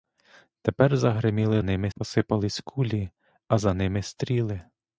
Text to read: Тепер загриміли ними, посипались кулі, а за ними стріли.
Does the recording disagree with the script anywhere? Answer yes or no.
no